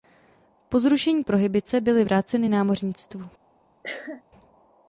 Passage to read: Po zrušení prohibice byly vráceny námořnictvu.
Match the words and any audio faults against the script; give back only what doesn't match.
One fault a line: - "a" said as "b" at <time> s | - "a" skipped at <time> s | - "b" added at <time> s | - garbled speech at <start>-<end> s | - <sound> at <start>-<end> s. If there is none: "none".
- cough at 3.8-4.2 s